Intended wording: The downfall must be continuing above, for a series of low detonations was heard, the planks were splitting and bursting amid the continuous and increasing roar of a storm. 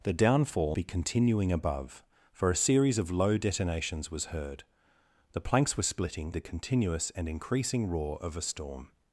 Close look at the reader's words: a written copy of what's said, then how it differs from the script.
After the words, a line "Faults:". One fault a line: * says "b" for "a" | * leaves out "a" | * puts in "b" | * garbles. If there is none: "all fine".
The downfall be continuing above, for a series of low detonations was heard, the planks were splitting the continuous and increasing roar of a storm.
Faults:
* leaves out "must"
* leaves out "and bursting amid"